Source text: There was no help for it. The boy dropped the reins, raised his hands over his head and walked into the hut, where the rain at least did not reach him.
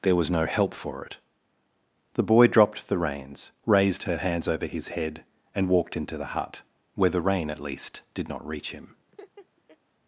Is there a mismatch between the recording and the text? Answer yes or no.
yes